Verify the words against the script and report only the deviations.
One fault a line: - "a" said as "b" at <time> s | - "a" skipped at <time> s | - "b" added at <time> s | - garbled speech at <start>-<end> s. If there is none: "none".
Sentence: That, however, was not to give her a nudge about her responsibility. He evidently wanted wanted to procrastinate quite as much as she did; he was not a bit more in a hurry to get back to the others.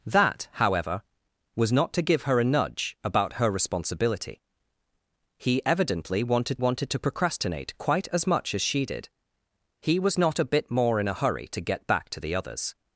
none